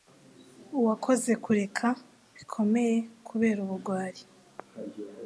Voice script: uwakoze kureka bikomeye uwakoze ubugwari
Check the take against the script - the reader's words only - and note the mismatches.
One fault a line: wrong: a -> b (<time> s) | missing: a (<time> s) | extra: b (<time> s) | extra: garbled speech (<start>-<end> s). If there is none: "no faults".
wrong: uwakoze -> kubera (3.3 s)